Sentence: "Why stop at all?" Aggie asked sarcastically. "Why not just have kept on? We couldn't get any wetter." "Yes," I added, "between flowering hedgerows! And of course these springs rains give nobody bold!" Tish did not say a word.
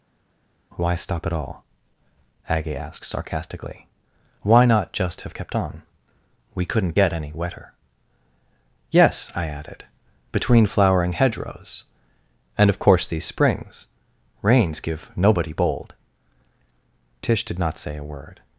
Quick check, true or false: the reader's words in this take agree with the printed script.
true